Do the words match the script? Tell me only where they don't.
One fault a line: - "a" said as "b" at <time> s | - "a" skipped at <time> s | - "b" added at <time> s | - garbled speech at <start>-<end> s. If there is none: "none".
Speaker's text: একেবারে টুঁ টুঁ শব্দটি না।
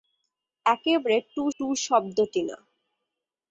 none